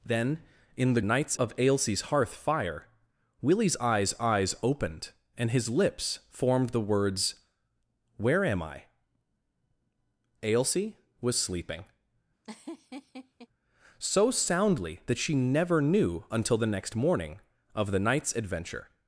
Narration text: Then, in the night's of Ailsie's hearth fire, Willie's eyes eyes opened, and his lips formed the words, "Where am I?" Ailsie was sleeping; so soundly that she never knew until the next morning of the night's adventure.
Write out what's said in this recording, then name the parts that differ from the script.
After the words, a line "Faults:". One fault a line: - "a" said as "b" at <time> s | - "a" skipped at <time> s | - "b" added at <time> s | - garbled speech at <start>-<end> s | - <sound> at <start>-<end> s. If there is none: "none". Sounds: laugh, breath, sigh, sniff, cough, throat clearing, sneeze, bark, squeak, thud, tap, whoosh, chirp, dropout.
Then, in the night's of Ailsie's hearth fire, Willie's eyes eyes opened, and his lips formed the words, "Where am I?" Ailsie was sleeping; so soundly that she never knew until the next morning of the night's adventure.
Faults:
- laugh at 12.4-13.5 s